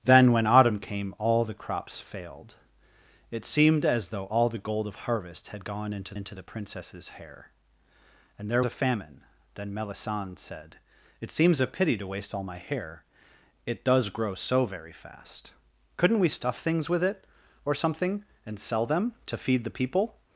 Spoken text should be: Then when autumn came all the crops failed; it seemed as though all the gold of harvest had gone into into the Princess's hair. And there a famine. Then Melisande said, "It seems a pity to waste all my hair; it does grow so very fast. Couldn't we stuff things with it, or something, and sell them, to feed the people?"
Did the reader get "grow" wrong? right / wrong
right